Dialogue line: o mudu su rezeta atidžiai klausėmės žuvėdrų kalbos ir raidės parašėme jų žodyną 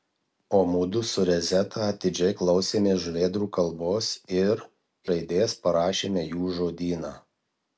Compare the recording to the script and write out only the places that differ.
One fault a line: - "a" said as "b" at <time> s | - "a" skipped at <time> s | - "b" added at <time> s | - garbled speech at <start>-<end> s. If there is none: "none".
none